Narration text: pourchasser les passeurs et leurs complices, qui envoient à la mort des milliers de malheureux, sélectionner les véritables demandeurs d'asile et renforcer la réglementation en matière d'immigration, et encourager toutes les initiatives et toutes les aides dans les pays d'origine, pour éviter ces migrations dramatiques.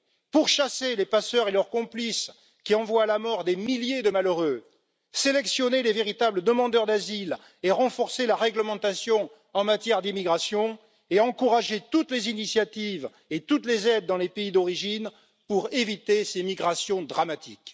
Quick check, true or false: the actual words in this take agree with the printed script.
true